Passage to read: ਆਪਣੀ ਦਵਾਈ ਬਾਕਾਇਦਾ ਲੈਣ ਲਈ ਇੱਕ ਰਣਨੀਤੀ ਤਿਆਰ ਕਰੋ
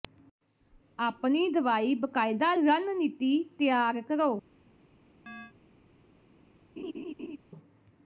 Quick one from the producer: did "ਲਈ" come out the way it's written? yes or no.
no